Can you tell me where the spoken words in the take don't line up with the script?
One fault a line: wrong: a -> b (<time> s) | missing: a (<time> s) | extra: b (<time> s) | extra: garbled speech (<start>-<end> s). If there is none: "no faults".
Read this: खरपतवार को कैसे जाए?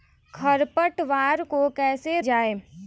no faults